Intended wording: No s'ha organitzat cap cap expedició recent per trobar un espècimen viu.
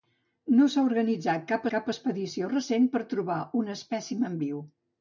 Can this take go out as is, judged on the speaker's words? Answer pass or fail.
pass